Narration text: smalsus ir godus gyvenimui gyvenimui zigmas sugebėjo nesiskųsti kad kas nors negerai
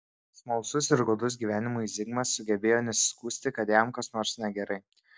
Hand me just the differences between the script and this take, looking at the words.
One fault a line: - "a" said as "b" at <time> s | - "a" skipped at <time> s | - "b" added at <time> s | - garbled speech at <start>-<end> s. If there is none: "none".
- "gyvenimui" skipped at 1.9 s
- "jam" added at 3.8 s